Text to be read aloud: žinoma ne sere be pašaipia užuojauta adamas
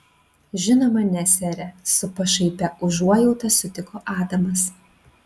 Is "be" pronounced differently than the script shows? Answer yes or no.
yes